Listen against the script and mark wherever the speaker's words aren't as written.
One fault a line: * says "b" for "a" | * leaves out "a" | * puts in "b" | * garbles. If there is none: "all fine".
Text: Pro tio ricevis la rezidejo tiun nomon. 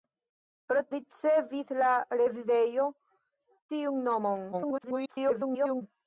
* leaves out "tio"
* garbles